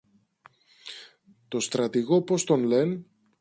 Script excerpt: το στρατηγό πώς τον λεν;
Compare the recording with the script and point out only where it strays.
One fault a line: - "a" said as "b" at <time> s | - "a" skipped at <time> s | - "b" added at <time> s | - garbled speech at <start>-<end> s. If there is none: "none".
none